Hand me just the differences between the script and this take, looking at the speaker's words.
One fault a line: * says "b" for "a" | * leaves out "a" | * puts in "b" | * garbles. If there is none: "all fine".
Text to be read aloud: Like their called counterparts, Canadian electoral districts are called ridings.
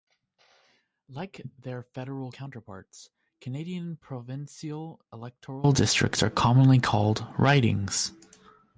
* says "federal" for "called"
* puts in "provincial"
* puts in "commonly"